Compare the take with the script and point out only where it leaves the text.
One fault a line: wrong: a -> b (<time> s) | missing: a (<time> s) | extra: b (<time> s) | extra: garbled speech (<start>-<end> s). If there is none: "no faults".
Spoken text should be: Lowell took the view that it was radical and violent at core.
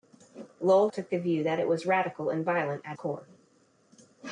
no faults